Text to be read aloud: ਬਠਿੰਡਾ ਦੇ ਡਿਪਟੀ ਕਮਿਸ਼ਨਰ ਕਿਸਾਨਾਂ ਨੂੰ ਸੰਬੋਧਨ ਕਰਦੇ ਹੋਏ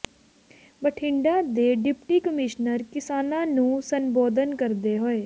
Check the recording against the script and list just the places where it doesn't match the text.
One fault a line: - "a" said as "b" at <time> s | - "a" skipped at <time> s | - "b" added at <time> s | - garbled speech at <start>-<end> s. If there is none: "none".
none